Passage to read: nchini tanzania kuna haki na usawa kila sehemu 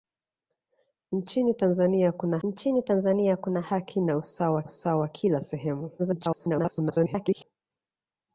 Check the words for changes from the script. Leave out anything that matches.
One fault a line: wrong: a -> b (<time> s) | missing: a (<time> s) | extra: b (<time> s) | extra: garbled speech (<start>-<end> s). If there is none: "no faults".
extra: nchini tanzania kuna (2.4 s)
extra: usawa (4.6 s)
extra: garbled speech (6.0-7.4 s)